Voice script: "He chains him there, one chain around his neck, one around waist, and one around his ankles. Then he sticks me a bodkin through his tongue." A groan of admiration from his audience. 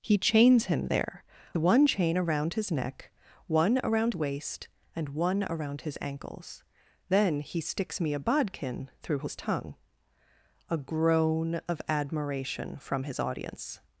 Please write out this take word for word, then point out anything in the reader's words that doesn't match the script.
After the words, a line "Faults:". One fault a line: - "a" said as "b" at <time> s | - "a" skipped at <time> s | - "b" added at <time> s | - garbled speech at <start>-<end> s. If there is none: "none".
"He chains him there, one chain around his neck, one around waist, and one around his ankles. Then he sticks me a bodkin through his tongue." A groan of admiration from his audience.
Faults:
none